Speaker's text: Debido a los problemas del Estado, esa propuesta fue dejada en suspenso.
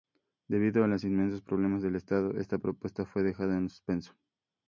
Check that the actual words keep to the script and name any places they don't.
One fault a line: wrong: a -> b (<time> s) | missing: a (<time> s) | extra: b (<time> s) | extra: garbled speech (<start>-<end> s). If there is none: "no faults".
extra: inmensos (1.0 s)
wrong: esa -> esta (2.4 s)